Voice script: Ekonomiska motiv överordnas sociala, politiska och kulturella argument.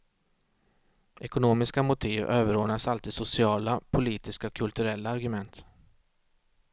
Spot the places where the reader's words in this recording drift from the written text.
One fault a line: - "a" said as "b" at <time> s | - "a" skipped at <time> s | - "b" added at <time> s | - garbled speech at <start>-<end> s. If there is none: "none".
- "alltid" added at 2.9 s